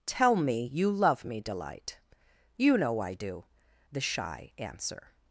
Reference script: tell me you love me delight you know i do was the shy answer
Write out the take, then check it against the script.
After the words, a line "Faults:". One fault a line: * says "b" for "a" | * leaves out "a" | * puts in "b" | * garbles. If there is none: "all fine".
tell me you love me delight you know i do the shy answer
Faults:
* leaves out "was"